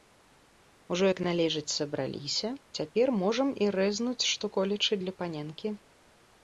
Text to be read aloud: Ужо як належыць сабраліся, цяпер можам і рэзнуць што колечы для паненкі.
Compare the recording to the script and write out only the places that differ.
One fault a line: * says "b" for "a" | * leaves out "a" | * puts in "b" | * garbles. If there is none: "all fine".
all fine